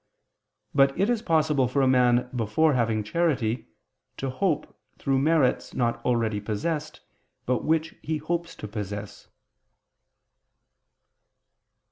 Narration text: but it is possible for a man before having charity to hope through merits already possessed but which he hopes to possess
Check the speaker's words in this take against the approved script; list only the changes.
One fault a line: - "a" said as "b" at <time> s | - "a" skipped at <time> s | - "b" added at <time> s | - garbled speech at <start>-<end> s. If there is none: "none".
- "not" added at 5.8 s